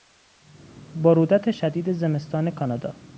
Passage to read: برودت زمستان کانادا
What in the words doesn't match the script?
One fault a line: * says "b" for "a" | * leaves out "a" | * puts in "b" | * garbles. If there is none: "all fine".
* puts in "شدید"